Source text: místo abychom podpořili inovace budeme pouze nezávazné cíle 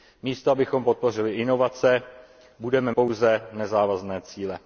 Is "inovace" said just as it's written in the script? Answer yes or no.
yes